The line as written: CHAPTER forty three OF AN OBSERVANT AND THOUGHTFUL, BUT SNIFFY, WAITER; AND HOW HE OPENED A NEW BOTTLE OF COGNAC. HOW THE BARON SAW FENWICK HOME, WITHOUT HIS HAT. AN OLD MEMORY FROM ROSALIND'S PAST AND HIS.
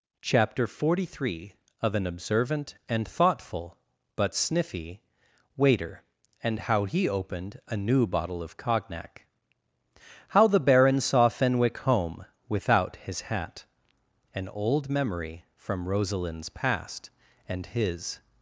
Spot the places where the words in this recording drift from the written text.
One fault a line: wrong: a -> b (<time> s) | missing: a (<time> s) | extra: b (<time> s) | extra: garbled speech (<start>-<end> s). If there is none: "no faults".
no faults